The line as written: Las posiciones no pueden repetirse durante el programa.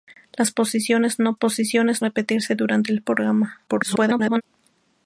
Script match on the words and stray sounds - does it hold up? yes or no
no